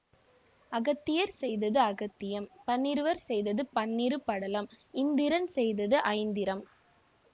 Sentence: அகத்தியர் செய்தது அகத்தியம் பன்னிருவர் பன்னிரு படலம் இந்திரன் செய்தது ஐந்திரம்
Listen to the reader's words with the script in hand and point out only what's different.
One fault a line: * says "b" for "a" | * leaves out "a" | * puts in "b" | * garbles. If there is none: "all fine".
* puts in "செய்தது"